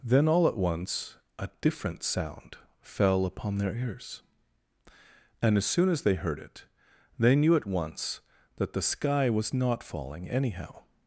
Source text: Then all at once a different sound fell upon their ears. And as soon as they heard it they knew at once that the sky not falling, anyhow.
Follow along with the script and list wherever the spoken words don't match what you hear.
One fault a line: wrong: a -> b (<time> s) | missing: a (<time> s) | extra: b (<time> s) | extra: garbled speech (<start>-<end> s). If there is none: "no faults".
extra: was (9.3 s)